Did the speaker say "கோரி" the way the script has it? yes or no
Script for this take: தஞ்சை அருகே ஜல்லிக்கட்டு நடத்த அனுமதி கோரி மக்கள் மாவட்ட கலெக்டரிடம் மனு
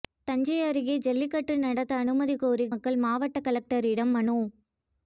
yes